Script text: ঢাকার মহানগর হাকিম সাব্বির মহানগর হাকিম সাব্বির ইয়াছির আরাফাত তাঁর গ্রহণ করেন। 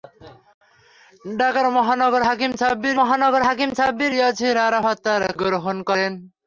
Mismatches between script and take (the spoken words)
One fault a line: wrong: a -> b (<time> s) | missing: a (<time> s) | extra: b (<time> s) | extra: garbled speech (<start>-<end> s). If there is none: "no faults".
no faults